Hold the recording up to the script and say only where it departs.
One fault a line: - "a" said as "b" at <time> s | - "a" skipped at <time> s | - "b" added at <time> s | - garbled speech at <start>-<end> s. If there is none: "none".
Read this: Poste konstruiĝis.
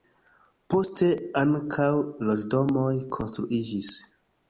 - "ankaŭ loĝdomoj" added at 1.4 s